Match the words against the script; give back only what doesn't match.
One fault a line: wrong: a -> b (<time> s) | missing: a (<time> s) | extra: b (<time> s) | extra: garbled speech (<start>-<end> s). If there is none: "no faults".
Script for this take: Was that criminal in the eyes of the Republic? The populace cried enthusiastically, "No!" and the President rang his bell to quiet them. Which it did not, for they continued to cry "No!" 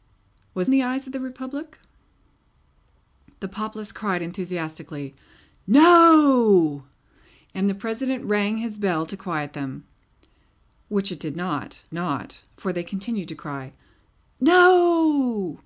missing: that criminal in (0.7 s)
extra: not (11.9 s)